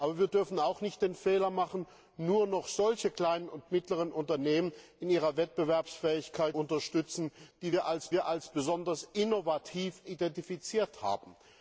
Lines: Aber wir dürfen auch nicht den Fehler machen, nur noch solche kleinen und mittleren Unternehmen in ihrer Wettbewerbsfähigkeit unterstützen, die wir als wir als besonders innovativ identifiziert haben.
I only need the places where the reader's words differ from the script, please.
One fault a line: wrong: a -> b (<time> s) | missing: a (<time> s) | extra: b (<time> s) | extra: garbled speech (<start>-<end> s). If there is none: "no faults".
no faults